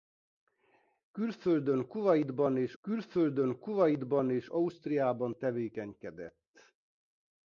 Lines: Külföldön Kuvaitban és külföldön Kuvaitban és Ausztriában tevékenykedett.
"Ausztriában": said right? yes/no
yes